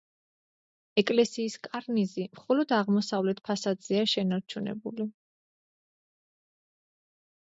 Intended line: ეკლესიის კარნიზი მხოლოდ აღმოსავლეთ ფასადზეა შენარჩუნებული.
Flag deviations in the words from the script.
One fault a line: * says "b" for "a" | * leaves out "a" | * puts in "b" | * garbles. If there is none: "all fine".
all fine